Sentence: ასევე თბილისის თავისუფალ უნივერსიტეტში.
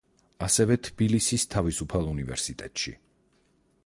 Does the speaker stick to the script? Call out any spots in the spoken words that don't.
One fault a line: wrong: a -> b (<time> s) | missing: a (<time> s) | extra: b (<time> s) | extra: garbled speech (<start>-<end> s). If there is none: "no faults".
no faults